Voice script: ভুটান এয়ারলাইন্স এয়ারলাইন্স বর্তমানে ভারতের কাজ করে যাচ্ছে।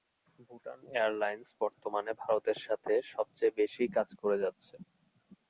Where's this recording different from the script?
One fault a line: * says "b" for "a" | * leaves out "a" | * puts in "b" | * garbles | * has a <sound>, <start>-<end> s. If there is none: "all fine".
* leaves out "এয়ারলাইন্স"
* puts in "সাথে সবচেয়ে বেশি"